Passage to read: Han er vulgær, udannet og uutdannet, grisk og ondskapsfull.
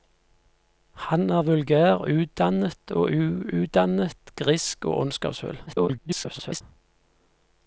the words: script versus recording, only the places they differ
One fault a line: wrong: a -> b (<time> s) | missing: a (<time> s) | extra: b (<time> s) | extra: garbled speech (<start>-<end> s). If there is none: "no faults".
extra: garbled speech (5.7-6.6 s)